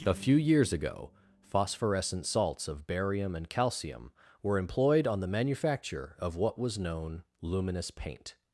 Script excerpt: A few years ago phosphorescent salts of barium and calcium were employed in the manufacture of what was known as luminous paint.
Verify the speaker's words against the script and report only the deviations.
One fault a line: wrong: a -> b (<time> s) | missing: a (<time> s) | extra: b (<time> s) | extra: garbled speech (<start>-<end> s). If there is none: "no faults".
wrong: in -> on (5.0 s)
missing: as (7.2 s)